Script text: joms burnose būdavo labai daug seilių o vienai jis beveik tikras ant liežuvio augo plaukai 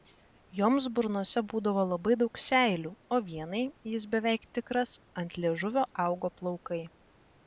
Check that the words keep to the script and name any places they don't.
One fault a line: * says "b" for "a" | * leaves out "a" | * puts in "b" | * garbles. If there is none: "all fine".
all fine